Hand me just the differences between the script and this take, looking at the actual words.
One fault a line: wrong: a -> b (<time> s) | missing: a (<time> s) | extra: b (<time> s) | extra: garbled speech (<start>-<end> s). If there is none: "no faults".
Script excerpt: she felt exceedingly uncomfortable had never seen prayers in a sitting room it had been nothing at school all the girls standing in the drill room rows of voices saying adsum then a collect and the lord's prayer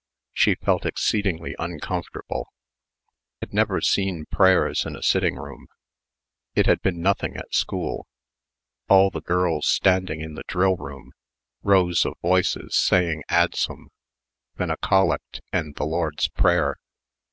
no faults